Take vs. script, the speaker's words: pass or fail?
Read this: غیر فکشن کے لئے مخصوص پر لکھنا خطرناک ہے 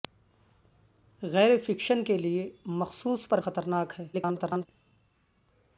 fail